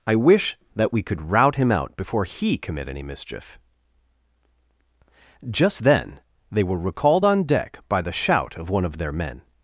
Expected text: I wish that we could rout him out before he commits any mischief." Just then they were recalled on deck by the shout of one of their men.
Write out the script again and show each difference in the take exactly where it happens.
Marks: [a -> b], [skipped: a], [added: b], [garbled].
I wish that we could rout him out before he [commits -> commit] any mischief." Just then they were recalled on deck by the shout of one of their men.